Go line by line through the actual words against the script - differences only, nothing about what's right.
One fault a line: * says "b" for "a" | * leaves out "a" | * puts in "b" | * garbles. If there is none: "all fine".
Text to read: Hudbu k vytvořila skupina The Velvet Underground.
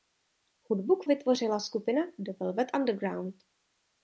all fine